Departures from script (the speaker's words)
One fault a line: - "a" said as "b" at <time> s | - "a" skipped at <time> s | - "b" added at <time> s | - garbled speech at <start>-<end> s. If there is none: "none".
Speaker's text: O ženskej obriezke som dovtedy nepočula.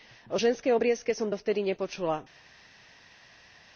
none